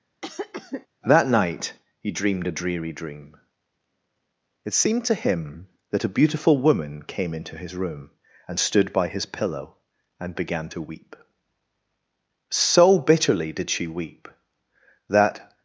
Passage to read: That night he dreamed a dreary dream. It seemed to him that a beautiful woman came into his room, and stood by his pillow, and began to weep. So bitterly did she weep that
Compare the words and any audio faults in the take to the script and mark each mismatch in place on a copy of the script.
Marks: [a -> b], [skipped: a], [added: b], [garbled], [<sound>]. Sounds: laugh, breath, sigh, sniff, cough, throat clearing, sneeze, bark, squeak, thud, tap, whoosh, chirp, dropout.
[cough] That night he dreamed a dreary dream. It seemed to him that a beautiful woman came into his room, and stood by his pillow, and began to weep. So bitterly did she weep that